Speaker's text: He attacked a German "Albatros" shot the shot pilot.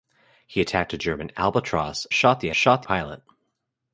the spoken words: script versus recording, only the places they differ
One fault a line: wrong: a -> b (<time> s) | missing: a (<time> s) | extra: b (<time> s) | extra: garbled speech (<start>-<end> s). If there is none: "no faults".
no faults